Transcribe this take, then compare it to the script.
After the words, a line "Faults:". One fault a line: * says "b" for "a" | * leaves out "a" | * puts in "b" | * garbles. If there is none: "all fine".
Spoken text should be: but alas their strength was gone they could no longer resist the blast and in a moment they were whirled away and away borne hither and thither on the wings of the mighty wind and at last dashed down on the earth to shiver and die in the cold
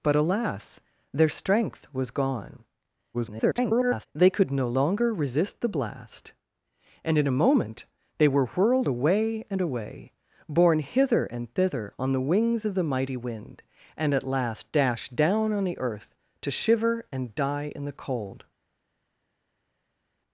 but alas their strength was gone [garbled] they could no longer resist the blast and in a moment they were whirled away and away borne hither and thither on the wings of the mighty wind and at last dashed down on the earth to shiver and die in the cold
Faults:
* garbles